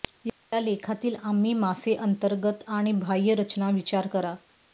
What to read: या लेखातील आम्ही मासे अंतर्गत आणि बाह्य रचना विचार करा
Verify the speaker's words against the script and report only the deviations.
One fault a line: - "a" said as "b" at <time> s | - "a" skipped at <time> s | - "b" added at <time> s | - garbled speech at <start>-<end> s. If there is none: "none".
none